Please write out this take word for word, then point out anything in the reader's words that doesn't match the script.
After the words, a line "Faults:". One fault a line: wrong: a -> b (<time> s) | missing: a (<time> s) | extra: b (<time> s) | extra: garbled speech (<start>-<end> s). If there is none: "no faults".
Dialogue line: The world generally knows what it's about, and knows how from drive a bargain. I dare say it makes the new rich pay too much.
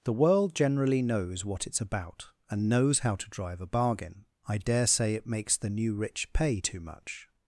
The world generally knows what it's about, and knows how to drive a bargain. I dare say it makes the new rich pay too much.
Faults:
wrong: from -> to (3.1 s)